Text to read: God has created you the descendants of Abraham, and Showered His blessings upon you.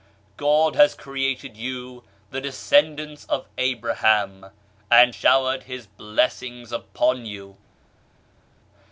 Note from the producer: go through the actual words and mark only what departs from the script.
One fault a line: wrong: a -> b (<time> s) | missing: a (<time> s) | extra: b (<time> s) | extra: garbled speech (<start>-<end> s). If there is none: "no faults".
no faults